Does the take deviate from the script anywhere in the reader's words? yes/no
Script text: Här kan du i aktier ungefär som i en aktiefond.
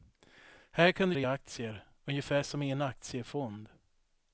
no